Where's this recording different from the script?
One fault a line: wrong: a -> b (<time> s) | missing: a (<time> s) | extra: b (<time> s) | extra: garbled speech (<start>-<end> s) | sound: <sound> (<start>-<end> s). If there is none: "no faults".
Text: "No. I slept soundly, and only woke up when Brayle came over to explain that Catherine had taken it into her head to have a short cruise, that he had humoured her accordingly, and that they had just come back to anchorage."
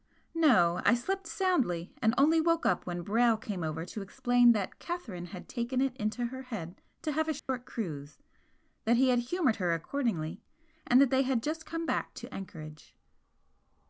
sound: dropout (7.4-7.5 s)